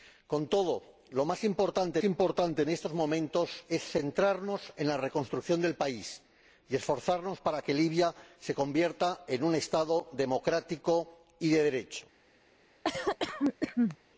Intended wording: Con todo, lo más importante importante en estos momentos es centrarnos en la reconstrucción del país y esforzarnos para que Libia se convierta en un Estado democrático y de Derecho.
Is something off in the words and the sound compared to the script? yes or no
yes